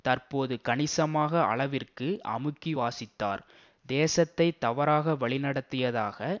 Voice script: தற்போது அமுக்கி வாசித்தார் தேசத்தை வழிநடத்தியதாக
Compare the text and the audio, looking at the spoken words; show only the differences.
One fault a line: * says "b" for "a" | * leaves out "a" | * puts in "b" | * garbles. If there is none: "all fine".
* puts in "கணிசமாக அளவிற்கு"
* puts in "தவறாக"